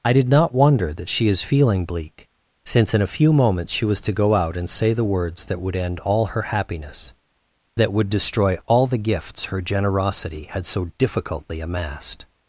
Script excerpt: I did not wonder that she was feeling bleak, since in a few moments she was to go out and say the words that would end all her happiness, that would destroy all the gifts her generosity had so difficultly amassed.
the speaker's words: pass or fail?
fail